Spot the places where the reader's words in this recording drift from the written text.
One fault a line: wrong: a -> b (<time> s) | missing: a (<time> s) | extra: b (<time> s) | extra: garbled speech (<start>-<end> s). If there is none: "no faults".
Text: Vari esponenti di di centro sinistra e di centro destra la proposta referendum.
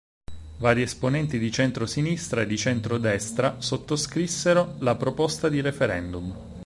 missing: di (1.5 s)
extra: sottoscrissero (3.6 s)
extra: di (5.5 s)